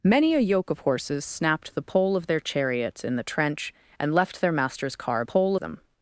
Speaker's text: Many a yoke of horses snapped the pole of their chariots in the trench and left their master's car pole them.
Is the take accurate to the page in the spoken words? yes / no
yes